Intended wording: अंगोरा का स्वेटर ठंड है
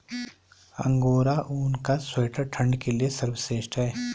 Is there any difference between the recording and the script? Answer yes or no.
yes